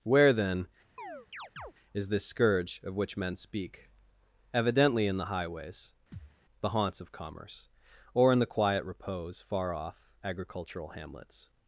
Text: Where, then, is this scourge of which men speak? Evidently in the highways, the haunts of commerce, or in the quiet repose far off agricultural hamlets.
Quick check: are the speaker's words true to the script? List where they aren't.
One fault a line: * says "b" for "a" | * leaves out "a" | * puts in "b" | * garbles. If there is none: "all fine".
all fine